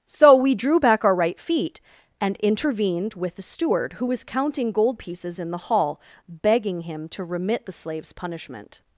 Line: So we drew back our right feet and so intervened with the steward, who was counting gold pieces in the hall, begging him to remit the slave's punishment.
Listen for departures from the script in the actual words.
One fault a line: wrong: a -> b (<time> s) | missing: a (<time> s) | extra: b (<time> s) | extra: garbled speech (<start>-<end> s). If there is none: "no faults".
missing: so (2.4 s)